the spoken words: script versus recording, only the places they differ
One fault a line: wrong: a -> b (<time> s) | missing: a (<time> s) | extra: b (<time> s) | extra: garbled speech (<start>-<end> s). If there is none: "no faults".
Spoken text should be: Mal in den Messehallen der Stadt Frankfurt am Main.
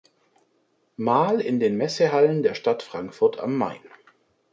no faults